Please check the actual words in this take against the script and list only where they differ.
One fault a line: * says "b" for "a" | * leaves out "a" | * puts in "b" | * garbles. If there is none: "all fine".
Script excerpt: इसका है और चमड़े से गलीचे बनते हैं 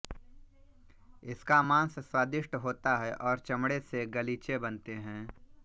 * puts in "मांस स्वादिष्ट होता"